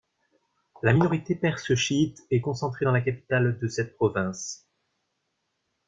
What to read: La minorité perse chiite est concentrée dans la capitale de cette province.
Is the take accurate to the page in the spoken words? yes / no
yes